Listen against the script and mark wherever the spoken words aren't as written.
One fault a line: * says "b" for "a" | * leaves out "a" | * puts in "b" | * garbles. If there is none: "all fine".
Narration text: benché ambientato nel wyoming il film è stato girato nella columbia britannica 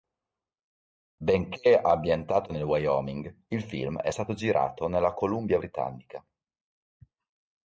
all fine